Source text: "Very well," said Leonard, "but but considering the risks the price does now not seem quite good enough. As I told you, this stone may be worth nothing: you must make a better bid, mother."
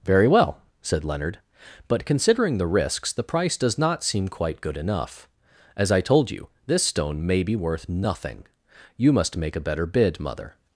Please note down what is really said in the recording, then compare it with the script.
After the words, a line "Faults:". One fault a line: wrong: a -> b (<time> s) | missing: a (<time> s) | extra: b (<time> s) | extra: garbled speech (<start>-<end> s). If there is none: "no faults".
"Very well," said Leonard, "but considering the risks the price does not seem quite good enough. As I told you, this stone may be worth nothing: you must make a better bid, mother."
Faults:
missing: but (2.0 s)
missing: now (3.8 s)